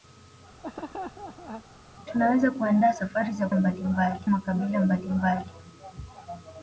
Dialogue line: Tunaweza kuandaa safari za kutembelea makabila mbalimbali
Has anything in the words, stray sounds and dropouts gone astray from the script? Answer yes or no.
yes